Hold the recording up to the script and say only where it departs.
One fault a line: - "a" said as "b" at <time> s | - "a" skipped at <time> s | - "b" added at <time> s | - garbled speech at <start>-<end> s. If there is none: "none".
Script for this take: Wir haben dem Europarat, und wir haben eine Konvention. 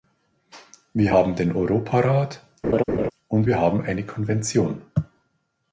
- "dem" said as "den" at 1.3 s